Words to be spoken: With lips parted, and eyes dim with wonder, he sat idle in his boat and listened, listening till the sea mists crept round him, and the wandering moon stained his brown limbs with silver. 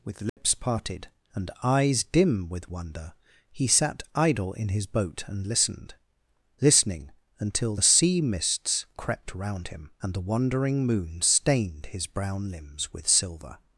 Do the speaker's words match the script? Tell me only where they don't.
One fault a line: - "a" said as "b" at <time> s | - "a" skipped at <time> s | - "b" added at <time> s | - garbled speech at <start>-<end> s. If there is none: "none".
- "till" said as "until" at 7.4 s